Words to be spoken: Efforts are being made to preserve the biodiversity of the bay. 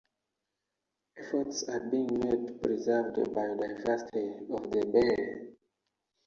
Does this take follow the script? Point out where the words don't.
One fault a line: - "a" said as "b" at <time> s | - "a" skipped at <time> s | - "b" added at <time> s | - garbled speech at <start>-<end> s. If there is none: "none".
none